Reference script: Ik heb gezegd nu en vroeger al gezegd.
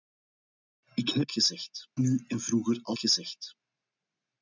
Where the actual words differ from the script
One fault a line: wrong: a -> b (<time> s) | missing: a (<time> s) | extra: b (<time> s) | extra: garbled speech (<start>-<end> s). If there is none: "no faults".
no faults